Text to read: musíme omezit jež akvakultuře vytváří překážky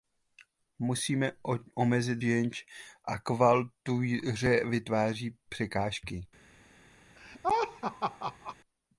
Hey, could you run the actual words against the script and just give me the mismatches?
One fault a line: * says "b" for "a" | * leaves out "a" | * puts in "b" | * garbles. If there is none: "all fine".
all fine